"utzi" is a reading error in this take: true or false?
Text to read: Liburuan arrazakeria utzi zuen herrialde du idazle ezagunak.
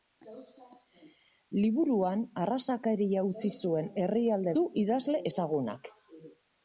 false